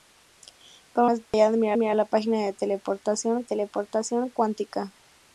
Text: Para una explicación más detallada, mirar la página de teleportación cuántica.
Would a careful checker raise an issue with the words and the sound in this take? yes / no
yes